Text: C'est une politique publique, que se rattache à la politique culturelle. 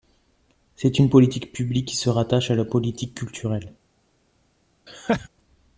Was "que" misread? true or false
true